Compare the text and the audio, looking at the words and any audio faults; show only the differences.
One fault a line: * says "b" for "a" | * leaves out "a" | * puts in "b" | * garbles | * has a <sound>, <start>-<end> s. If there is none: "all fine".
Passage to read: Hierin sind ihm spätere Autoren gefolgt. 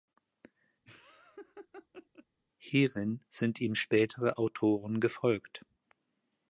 * has a laugh, 0.8-2.3 s